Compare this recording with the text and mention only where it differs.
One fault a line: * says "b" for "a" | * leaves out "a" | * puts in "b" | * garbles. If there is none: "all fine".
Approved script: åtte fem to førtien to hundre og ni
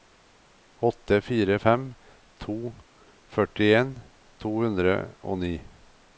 * puts in "fire"